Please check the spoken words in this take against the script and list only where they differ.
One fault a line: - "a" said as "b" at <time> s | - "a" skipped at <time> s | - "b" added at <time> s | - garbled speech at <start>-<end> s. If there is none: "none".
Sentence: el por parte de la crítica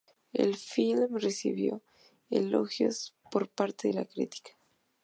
- "film recibió elogios" added at 0.6 s